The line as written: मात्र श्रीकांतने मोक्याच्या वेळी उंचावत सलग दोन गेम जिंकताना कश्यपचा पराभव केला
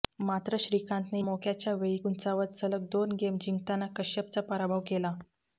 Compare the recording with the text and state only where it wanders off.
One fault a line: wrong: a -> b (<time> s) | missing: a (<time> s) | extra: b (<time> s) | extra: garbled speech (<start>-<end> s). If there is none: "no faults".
no faults